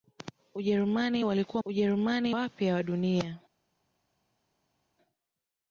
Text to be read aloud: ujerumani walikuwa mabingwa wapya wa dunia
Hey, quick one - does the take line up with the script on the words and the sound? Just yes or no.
no